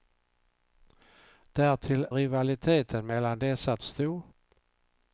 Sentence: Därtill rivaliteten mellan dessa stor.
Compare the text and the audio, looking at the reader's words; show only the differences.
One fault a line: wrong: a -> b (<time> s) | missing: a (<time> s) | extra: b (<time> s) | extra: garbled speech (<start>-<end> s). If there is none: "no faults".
no faults